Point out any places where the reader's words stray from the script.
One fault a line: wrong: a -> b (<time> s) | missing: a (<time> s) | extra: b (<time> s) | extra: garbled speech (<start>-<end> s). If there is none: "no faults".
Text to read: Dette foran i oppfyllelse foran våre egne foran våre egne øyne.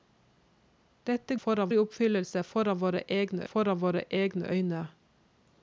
no faults